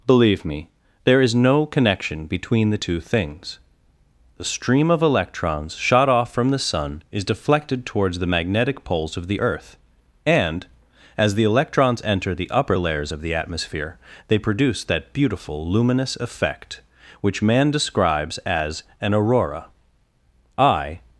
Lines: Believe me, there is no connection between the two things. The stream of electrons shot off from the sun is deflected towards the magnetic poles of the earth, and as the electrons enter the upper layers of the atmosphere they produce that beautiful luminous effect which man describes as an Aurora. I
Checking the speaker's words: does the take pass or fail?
pass